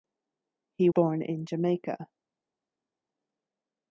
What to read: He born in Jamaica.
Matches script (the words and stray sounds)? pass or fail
pass